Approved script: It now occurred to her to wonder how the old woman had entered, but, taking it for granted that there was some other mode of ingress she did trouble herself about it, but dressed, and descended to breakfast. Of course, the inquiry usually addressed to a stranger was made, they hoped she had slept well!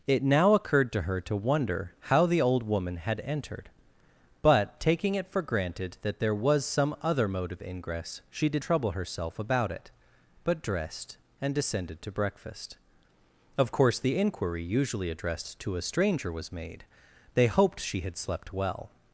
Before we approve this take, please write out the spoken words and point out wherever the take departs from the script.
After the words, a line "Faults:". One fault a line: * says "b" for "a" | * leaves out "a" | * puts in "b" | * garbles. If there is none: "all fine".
It now occurred to her to wonder how the old woman had entered, but, taking it for granted that there was some other mode of ingress she did trouble herself about it, but dressed, and descended to breakfast. Of course, the inquiry usually addressed to a stranger was made, they hoped she had slept well!
Faults:
all fine